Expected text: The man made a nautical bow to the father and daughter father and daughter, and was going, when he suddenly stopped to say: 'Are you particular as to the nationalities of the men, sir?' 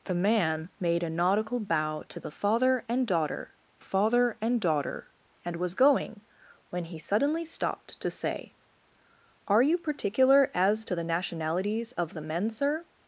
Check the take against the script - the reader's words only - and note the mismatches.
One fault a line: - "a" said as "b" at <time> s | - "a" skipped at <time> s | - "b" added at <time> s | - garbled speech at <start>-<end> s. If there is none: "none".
none